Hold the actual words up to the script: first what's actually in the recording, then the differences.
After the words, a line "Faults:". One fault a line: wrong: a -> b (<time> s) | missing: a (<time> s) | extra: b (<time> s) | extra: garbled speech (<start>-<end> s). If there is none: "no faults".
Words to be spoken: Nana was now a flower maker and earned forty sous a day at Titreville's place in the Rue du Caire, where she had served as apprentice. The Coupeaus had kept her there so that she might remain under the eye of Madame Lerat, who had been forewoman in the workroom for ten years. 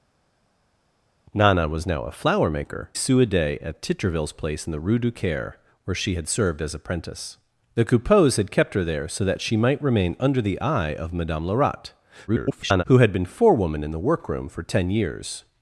Nana was now a flower maker sous a day at Titreville's place in the Rue du Caire, where she had served as apprentice. The Coupeaus had kept her there so that she might remain under the eye of Madame Lerat, [garbled] who had been forewoman in the workroom for ten years.
Faults:
missing: and earned forty (2.9 s)
extra: garbled speech (12.3-12.8 s)